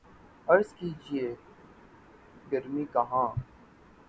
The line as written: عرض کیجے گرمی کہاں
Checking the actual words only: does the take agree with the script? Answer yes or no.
yes